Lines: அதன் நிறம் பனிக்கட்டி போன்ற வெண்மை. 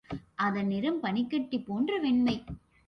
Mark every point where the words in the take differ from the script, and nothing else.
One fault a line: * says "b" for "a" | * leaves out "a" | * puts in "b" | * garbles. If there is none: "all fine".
all fine